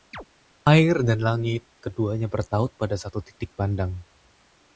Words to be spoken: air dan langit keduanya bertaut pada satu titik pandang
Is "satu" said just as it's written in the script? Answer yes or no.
yes